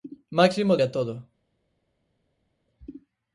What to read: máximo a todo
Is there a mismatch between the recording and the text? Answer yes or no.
no